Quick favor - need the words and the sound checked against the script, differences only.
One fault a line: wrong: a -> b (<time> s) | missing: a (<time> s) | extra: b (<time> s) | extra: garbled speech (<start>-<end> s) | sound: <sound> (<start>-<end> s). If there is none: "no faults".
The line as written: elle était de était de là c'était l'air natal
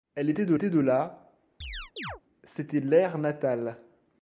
sound: chirp (1.6-2.2 s)